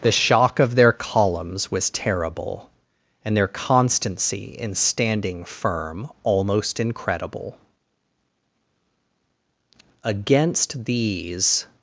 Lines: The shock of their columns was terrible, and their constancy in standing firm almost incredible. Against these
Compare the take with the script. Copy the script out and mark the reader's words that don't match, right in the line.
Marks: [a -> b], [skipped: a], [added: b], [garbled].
The shock of their columns was terrible, and their constancy in standing firm almost incredible. Against these